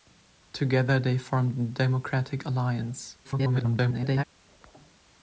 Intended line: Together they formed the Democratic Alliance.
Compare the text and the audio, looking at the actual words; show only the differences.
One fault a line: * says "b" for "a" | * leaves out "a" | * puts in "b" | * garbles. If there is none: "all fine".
* garbles